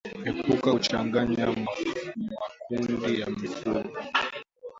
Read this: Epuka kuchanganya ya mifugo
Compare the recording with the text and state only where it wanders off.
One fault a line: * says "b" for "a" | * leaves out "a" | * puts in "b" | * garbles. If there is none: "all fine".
* puts in "makundi"